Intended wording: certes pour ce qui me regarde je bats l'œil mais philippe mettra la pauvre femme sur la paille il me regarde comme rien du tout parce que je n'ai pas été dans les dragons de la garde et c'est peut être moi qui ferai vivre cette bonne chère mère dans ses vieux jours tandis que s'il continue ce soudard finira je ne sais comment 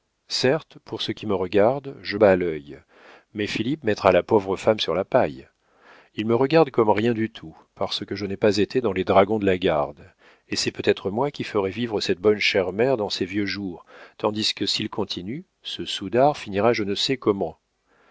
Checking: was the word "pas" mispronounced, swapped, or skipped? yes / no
no